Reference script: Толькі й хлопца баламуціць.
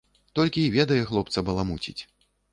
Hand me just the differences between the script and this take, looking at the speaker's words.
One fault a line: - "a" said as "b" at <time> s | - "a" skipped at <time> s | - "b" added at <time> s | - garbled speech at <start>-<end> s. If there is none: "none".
- "ведае" added at 0.8 s